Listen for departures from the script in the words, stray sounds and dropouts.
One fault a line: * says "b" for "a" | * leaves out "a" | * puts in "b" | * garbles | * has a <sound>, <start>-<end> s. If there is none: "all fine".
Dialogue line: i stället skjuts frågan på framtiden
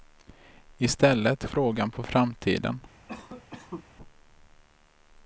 * leaves out "skjuts"
* has a cough, 3.1-3.9 s